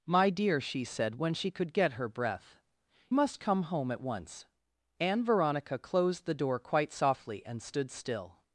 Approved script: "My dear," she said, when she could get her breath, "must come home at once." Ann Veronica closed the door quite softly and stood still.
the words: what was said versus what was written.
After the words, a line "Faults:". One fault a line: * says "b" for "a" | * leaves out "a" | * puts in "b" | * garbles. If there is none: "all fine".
"My dear," she said, when she could get her breath, "must come home at once." Ann Veronica closed the door quite softly and stood still.
Faults:
all fine